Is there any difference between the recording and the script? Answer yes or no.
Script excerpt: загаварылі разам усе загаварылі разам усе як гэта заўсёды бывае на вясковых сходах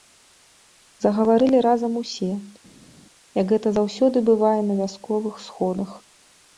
yes